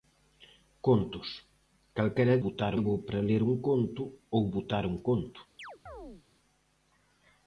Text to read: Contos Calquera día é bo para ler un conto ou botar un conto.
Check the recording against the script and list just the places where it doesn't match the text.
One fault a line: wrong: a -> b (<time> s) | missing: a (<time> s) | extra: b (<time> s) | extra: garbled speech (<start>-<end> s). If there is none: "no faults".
wrong: día -> botar (2.4 s)